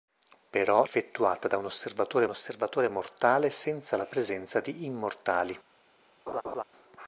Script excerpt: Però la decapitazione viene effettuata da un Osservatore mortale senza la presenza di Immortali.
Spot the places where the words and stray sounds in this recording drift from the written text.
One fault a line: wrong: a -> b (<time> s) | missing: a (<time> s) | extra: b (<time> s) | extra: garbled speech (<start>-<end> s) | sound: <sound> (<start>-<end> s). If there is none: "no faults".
missing: la decapitazione viene (0.8 s)
extra: Osservatore (2.3 s)
sound: laugh (6.3-6.6 s)